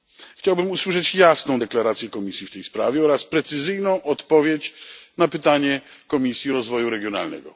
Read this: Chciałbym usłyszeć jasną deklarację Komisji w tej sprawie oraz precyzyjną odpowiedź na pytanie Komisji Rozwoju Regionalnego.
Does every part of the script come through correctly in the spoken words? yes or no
yes